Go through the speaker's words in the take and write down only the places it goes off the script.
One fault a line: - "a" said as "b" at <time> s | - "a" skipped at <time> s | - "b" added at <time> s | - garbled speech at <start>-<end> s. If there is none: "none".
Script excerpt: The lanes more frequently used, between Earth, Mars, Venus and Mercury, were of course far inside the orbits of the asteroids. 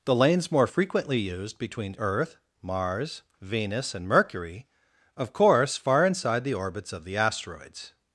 - "were" skipped at 4.7 s